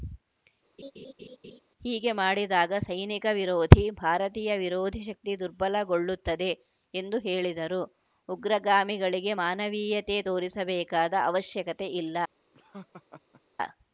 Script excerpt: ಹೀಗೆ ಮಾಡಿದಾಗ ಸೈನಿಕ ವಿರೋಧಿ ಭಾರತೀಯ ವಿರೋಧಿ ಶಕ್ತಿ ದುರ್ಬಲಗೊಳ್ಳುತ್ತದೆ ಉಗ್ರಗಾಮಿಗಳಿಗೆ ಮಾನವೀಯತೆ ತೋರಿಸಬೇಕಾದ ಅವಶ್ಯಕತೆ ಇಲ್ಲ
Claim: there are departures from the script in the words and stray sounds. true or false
true